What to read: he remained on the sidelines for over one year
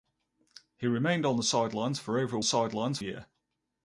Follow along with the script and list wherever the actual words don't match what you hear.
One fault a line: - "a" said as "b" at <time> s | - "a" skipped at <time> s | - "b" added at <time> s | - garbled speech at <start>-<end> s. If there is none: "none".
- "one" said as "sidelines" at 2.4 s